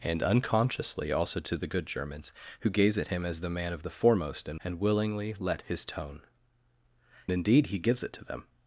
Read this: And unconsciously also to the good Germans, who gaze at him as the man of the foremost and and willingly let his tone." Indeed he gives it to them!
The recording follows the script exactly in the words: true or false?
true